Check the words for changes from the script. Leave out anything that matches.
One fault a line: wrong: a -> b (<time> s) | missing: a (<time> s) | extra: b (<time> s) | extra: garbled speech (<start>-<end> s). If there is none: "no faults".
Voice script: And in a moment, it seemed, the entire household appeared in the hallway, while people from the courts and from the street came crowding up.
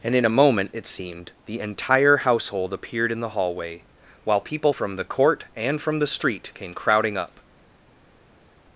wrong: courts -> court (5.0 s)